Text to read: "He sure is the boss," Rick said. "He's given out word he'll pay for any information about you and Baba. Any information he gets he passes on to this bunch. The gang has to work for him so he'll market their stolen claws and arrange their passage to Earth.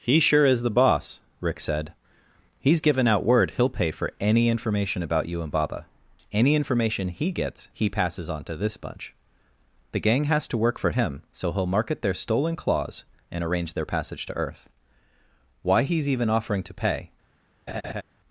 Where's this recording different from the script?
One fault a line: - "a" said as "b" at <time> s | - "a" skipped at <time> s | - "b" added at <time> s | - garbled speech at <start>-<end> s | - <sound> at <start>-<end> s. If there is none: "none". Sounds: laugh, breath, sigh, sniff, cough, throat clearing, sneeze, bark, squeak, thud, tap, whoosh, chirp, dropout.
- "Why he's even offering to pay" added at 15.6 s
- laugh at 17.7-18.0 s